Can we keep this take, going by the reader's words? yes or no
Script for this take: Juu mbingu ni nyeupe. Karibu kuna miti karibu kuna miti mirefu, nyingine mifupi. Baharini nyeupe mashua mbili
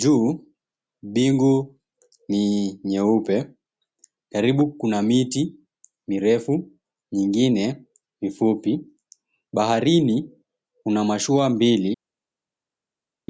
no